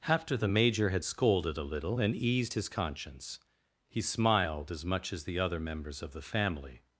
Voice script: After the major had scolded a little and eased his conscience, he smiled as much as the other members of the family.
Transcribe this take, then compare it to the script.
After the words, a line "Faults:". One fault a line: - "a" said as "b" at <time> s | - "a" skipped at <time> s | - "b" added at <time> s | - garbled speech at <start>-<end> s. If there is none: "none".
After the major had scolded a little and eased his conscience, he smiled as much as the other members of the family.
Faults:
none